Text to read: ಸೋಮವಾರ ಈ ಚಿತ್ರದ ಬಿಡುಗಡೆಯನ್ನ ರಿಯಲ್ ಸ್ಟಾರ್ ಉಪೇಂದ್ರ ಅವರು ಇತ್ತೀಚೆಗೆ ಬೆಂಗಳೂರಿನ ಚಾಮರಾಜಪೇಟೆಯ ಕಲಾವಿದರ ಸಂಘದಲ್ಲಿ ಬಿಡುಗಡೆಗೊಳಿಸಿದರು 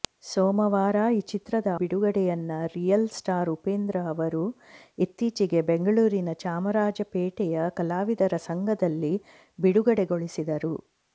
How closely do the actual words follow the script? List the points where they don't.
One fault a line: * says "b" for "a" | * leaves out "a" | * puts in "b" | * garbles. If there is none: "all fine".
all fine